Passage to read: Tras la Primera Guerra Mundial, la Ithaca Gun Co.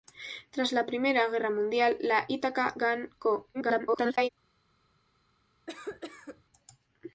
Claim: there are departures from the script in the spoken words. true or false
true